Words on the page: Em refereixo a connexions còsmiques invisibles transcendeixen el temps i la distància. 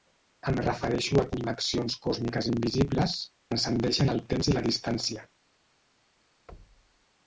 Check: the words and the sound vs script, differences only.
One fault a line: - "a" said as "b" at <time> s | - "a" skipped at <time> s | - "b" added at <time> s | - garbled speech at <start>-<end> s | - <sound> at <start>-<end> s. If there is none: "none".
- thud at 6.5-7.1 s